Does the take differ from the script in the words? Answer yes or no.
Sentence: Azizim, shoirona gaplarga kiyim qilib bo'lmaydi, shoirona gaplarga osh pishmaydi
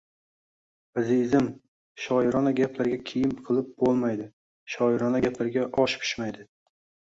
no